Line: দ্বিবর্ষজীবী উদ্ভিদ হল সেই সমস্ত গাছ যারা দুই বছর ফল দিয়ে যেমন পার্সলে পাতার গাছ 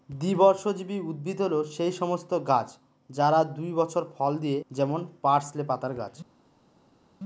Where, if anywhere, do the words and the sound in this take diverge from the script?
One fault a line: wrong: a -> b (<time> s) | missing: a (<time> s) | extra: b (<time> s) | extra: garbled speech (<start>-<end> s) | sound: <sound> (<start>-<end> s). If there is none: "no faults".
no faults